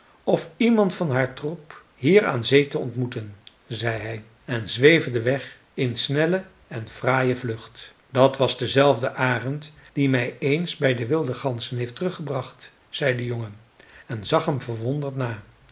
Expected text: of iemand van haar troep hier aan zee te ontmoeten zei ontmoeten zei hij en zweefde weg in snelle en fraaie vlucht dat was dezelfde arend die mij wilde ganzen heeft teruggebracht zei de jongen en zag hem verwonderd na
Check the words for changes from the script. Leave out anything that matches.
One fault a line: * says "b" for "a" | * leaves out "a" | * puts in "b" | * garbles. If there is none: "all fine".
* leaves out "ontmoeten zei"
* puts in "eens bij de"